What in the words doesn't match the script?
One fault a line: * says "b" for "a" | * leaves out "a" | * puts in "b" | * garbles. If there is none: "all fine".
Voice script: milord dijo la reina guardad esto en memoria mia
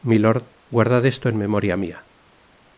* leaves out "dijo la reina"